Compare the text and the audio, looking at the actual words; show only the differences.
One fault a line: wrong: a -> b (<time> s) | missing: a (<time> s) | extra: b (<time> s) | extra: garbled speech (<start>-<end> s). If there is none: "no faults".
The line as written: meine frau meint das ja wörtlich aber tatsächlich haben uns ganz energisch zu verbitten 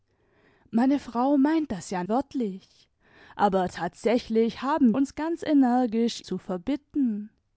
no faults